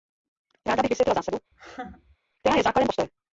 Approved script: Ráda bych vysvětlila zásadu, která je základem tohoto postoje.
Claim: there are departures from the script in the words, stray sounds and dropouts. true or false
true